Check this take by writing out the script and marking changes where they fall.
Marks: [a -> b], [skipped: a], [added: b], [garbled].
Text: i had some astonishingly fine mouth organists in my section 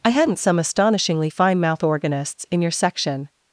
i [had -> hadn't] some astonishingly fine mouth organists in [my -> your] section